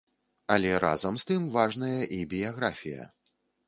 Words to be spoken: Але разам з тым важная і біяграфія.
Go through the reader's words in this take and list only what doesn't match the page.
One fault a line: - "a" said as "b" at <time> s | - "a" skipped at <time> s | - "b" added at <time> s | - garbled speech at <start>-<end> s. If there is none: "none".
none